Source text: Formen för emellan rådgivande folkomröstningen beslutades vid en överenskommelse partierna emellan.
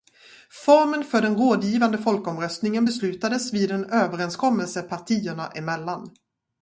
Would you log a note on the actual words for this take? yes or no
yes